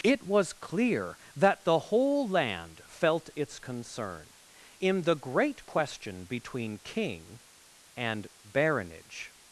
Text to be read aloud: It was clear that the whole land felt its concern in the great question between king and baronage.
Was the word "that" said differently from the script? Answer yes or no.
no